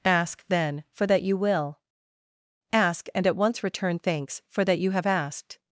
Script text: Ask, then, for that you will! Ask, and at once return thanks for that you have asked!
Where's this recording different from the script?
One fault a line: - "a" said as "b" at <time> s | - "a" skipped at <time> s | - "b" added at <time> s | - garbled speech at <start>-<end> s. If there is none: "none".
none